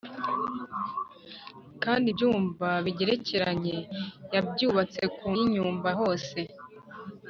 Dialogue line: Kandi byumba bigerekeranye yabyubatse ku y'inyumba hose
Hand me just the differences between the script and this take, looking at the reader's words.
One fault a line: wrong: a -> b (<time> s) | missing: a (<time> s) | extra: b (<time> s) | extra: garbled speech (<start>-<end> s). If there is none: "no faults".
no faults